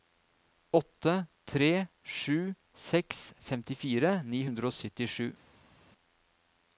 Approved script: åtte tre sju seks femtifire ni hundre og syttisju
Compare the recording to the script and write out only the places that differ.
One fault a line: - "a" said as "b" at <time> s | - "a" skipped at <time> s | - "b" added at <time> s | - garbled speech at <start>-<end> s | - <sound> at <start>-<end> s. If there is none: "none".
none